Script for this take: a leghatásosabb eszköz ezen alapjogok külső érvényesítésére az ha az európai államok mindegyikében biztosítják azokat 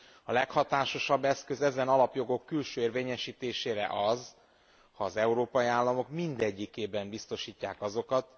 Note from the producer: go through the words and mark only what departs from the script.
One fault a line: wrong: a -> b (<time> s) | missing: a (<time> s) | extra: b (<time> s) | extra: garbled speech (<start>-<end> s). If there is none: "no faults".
no faults